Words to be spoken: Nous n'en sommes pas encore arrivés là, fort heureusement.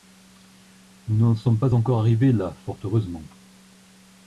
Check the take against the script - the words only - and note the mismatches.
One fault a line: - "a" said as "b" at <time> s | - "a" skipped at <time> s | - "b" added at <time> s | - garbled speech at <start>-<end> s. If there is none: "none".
none